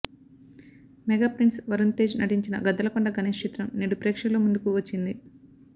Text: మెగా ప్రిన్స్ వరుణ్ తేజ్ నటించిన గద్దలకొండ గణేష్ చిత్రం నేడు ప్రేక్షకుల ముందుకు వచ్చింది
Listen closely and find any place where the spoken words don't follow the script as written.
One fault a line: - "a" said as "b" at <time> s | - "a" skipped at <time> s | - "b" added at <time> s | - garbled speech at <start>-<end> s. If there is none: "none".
none